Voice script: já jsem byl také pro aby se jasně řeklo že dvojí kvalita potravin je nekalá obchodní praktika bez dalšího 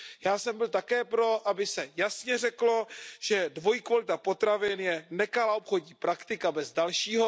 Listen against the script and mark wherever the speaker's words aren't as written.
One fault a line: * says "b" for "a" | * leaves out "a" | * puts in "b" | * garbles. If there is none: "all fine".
all fine